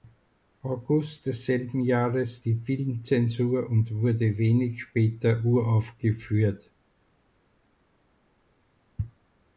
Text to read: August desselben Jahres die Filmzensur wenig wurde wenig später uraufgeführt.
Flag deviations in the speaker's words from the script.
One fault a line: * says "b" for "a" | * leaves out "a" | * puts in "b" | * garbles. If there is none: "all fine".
* says "und" for "wenig"